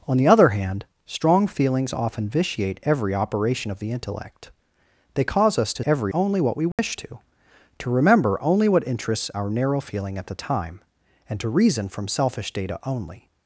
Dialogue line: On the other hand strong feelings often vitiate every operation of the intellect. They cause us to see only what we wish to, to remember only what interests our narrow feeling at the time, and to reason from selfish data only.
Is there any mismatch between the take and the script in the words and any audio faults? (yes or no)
yes